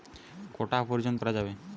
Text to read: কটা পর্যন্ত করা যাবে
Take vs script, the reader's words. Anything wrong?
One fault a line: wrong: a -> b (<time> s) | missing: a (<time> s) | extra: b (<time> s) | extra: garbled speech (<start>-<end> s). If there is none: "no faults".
no faults